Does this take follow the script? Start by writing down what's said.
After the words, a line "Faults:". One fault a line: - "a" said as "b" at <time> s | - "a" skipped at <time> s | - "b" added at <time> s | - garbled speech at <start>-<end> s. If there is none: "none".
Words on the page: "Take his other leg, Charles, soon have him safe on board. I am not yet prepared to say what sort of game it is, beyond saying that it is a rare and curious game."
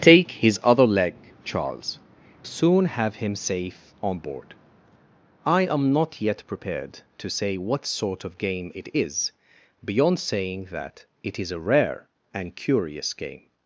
"Take his other leg, Charles, soon have him safe on board. I am not yet prepared to say what sort of game it is, beyond saying that it is a rare and curious game."
Faults:
none